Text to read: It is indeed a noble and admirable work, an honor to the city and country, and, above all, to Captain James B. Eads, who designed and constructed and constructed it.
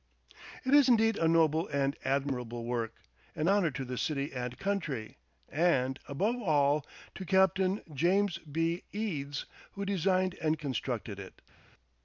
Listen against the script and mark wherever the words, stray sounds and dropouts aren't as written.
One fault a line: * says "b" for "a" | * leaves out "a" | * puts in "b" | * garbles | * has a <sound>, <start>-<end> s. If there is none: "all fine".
* leaves out "and constructed"